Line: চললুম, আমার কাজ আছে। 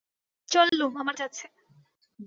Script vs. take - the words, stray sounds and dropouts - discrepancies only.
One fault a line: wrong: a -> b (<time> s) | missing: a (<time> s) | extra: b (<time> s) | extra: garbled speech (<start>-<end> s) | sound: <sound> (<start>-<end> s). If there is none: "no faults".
sound: dropout (0.7-0.7 s)
missing: কাজ (1.2 s)